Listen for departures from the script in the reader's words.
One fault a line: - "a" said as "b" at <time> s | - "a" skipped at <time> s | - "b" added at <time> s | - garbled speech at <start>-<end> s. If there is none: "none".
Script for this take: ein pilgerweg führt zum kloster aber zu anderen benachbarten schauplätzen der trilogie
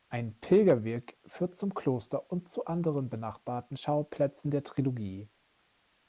- "aber" said as "und" at 2.3 s